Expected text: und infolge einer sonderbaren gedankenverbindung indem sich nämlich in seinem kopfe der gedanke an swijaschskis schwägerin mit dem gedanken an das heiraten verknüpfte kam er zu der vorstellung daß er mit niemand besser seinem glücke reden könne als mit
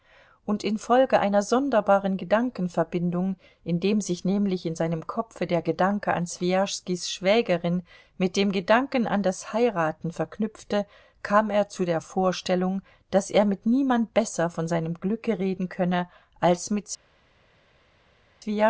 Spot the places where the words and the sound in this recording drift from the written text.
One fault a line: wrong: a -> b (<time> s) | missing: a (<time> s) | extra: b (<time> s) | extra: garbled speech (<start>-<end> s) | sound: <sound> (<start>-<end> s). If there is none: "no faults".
extra: von (14.5 s)